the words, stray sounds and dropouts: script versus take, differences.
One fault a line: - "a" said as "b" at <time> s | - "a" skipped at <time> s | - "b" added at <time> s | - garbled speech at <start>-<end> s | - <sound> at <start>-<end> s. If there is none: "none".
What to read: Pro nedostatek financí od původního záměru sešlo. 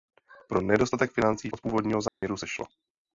- dropout at 2.1-2.2 s